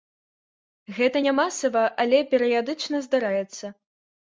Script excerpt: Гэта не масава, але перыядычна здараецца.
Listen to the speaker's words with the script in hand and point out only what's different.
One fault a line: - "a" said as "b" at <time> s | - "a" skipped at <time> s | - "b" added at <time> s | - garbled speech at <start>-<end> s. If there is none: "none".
none